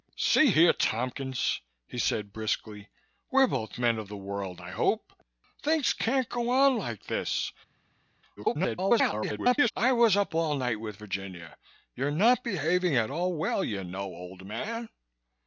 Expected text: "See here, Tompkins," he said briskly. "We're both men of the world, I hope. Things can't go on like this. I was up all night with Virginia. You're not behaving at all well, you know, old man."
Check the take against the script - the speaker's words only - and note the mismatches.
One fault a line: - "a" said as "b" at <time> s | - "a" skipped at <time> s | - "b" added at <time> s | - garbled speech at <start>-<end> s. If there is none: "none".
- garbled speech at 8.4-9.7 s